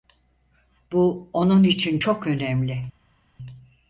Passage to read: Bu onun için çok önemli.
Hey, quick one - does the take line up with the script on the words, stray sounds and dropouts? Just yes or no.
yes